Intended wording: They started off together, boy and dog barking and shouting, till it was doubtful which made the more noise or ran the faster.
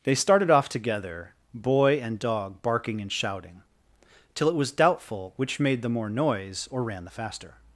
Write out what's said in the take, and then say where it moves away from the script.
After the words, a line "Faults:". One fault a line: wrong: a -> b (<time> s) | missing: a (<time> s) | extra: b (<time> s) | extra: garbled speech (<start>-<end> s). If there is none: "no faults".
They started off together, boy and dog barking and shouting, till it was doubtful which made the more noise or ran the faster.
Faults:
no faults